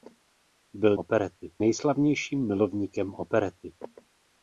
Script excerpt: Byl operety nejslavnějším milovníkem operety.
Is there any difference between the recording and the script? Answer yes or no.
no